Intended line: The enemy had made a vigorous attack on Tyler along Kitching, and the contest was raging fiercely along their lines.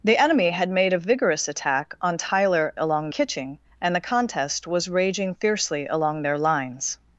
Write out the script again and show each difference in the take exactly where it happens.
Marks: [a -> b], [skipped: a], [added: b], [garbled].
The enemy had made a vigorous attack on Tyler along Kitching, and the contest was raging fiercely along their lines.